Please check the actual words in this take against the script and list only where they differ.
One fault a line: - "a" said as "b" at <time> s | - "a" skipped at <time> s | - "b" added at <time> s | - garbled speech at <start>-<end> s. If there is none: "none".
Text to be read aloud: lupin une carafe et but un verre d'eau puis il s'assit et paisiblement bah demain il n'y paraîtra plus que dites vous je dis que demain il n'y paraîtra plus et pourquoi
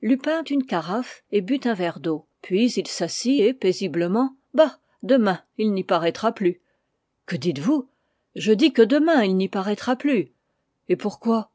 none